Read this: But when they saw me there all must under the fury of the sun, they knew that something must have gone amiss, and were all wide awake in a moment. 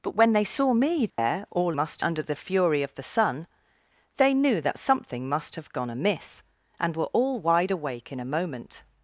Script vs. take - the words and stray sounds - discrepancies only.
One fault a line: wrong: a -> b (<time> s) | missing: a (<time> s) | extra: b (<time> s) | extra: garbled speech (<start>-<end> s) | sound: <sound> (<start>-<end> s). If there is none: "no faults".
sound: dropout (1.1-1.2 s)